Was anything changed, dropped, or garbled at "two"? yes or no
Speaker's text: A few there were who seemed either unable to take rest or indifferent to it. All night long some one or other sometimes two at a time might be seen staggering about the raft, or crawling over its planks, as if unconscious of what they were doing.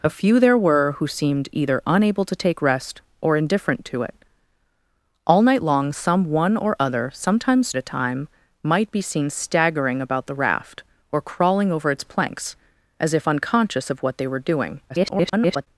yes